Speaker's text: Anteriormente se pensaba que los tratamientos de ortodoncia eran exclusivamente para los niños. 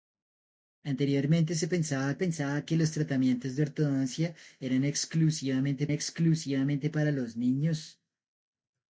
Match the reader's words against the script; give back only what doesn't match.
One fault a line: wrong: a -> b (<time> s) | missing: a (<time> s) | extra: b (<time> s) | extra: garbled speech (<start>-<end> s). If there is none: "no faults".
extra: pensaba (2.2 s)
extra: exclusivamente (5.9 s)